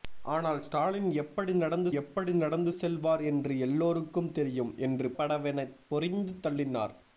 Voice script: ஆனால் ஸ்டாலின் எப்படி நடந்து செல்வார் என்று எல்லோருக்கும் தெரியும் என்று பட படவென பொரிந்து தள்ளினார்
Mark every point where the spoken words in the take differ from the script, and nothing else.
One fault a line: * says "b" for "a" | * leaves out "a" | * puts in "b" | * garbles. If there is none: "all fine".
* puts in "எப்படி நடந்து"
* leaves out "பட"